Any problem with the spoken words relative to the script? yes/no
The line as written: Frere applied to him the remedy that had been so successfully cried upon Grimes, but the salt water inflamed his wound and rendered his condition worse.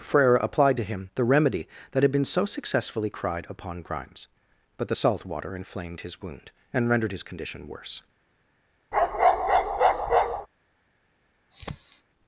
no